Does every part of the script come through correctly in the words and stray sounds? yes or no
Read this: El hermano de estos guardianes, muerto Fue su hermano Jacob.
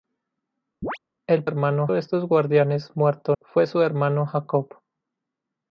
no